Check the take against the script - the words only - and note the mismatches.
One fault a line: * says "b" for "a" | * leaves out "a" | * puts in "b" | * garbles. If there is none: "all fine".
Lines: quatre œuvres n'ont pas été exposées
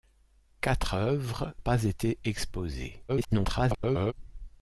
* leaves out "n'ont"
* garbles